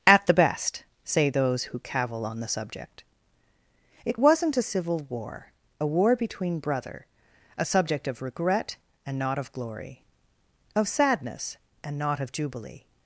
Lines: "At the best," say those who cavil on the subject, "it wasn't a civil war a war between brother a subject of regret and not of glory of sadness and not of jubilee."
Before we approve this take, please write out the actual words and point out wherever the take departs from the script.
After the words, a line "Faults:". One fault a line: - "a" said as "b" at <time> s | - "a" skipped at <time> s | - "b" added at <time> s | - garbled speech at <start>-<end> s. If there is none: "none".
"At the best," say those who cavil on the subject, "it wasn't a civil war a war between brother a subject of regret and not of glory of sadness and not of jubilee."
Faults:
none